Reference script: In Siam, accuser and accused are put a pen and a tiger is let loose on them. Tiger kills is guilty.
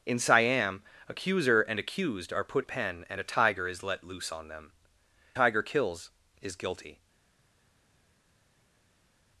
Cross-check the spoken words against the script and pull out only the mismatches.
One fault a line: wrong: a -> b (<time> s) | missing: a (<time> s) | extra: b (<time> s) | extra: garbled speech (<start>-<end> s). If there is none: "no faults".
no faults